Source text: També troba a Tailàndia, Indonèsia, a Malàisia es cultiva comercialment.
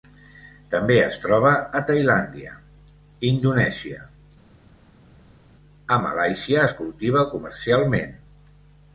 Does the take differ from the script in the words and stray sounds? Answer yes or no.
yes